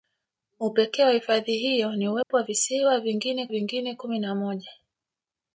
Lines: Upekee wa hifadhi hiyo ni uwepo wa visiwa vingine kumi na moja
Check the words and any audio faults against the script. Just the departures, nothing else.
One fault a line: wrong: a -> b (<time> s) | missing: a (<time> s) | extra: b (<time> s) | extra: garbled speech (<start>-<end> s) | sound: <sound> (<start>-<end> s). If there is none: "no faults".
sound: dropout (2.2-2.3 s)
extra: vingine (3.5 s)